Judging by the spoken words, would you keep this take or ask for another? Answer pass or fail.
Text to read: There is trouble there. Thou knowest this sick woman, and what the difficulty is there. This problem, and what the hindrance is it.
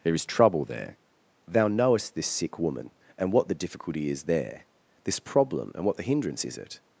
pass